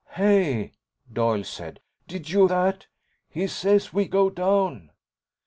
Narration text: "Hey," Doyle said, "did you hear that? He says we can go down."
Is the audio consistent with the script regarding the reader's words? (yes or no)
no